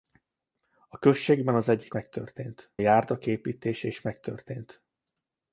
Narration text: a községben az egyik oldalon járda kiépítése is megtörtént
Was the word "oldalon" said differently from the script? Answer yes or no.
yes